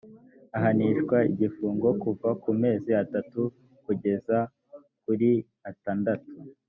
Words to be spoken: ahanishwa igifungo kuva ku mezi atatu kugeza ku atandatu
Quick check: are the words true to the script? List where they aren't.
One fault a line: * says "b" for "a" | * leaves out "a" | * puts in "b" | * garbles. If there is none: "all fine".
* says "kuri" for "ku"